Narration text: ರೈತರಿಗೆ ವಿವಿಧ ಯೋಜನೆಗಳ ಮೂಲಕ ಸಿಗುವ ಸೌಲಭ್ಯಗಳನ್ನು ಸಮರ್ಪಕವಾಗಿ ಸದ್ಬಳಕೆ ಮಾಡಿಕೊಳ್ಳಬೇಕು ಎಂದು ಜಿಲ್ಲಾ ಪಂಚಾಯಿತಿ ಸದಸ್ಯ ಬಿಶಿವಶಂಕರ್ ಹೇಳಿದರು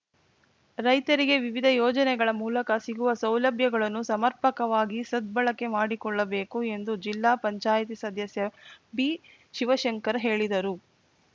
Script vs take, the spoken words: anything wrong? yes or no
no